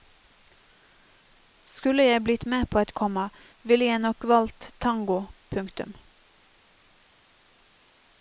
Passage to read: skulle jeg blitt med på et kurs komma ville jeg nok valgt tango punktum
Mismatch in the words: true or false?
true